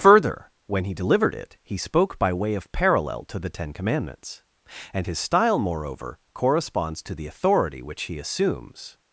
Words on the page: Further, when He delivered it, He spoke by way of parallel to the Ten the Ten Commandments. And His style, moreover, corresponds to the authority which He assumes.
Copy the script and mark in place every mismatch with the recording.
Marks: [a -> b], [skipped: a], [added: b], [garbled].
Further, when He delivered it, He spoke by way of parallel to the Ten [skipped: the Ten] Commandments. And His style, moreover, corresponds to the authority which He assumes.